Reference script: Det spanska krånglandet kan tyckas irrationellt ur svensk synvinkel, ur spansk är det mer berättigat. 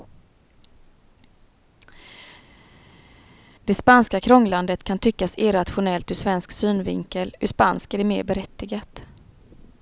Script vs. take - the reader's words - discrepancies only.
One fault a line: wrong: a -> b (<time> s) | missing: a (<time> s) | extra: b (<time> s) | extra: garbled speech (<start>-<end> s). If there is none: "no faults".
no faults